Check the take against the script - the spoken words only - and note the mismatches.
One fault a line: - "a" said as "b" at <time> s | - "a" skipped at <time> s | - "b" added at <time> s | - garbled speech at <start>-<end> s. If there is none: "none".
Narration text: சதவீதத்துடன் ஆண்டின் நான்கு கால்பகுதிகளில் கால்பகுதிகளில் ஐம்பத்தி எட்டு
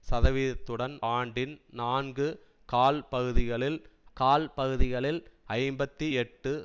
none